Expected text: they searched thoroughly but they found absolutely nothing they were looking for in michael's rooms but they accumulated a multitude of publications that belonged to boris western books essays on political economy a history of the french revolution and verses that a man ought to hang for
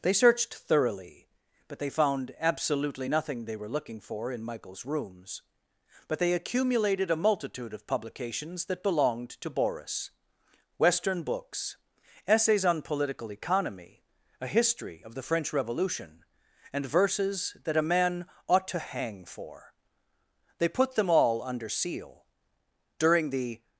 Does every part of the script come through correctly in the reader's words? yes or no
no